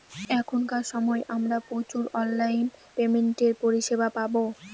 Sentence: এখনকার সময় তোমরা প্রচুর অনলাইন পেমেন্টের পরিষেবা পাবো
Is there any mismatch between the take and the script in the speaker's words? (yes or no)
yes